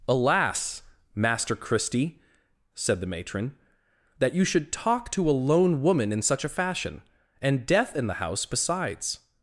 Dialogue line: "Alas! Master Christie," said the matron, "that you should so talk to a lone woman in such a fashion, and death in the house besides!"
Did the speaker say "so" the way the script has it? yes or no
no